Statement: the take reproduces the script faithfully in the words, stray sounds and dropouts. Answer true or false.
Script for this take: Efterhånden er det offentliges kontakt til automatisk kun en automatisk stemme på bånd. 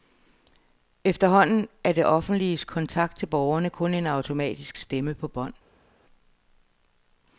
false